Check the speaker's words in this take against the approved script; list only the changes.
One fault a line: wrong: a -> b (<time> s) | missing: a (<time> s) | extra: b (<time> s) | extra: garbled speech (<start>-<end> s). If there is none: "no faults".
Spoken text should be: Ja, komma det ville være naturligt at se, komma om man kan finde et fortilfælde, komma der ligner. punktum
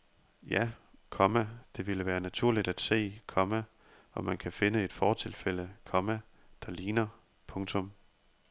no faults